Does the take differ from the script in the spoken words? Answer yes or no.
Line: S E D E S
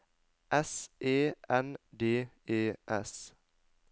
yes